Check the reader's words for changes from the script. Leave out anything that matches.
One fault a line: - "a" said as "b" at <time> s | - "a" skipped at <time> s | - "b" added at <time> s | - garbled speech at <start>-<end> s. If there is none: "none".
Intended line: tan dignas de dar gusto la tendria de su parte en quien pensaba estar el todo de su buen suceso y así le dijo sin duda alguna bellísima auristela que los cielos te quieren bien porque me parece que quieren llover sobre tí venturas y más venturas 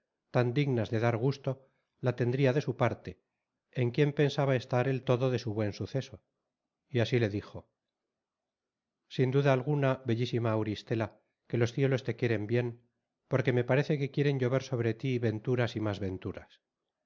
none